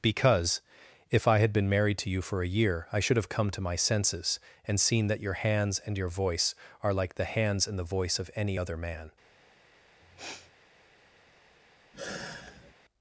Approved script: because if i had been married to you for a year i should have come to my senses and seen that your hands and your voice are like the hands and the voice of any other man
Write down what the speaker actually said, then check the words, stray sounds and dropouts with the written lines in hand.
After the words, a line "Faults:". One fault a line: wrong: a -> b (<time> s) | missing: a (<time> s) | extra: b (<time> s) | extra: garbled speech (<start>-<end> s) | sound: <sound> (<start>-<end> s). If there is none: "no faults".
because if i had been married to you for a year i should have come to my senses and seen that your hands and your voice are like the hands and the voice of any other man
Faults:
sound: sniff (10.0-10.5 s)
sound: sigh (11.9-12.7 s)